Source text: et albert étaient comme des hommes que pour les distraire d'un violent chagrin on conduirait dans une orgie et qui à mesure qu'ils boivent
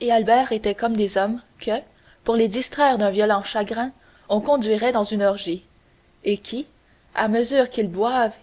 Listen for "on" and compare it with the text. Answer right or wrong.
right